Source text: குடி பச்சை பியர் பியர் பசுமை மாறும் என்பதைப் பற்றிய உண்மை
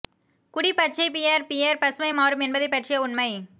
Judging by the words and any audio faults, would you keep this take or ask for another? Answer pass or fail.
pass